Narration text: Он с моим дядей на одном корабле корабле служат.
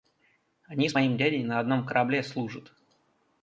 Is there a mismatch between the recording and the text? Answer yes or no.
yes